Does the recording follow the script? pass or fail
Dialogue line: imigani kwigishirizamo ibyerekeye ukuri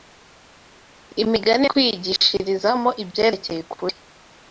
pass